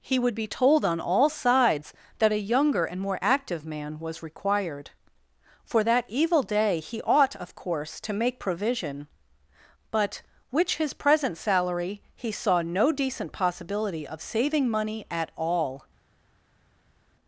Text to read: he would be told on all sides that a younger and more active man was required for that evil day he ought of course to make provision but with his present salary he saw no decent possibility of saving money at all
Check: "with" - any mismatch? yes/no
yes